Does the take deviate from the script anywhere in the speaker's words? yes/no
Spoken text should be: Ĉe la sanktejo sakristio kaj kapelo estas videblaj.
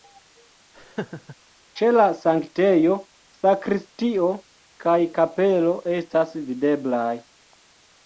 no